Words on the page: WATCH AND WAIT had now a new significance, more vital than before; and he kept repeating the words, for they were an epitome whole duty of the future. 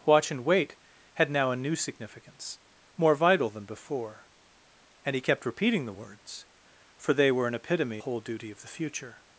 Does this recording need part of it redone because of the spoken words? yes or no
no